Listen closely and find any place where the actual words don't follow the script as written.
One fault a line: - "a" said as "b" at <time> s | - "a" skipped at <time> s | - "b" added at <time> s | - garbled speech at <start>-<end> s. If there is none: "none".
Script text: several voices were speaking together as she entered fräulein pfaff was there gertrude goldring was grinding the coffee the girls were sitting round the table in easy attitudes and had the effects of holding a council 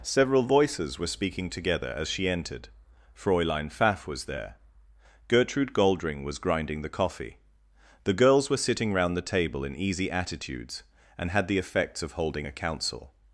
none